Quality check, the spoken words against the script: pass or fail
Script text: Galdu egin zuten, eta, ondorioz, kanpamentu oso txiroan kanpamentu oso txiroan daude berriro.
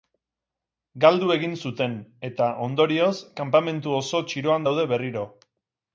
fail